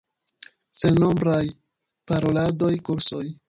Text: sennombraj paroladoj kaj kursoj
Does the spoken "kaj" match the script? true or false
false